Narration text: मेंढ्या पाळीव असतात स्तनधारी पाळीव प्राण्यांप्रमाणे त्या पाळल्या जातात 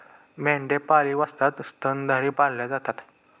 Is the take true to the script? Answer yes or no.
no